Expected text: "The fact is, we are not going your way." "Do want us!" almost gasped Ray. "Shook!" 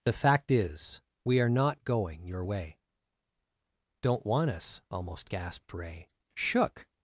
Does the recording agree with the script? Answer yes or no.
no